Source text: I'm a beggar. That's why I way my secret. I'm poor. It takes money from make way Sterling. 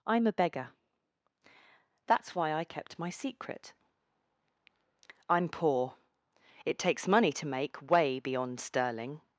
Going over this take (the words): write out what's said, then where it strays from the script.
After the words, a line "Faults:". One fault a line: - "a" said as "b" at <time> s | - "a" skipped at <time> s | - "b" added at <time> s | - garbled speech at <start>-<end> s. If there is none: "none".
I'm a beggar. That's why I kept my secret. I'm poor. It takes money to make way beyond Sterling.
Faults:
- "way" said as "kept" at 2.6 s
- "from" said as "to" at 7.3 s
- "beyond" added at 8.2 s